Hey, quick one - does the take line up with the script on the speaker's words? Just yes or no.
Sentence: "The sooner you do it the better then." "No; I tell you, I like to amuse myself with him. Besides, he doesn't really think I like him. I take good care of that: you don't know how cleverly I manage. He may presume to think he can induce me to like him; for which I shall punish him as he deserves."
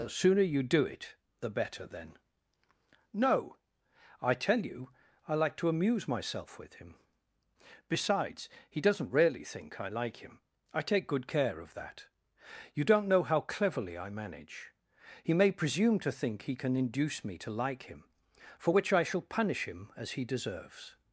yes